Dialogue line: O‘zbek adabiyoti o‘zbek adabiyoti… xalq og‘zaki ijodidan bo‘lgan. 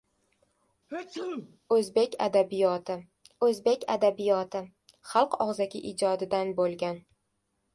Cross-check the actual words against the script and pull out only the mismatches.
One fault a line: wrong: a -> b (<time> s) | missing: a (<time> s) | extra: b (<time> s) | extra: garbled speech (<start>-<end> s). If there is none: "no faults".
no faults